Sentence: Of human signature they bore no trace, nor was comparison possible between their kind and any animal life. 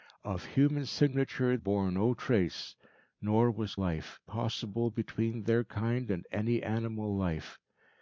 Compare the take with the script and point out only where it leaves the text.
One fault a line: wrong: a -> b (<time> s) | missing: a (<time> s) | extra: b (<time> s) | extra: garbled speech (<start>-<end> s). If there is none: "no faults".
missing: they (1.6 s)
wrong: comparison -> life (3.8 s)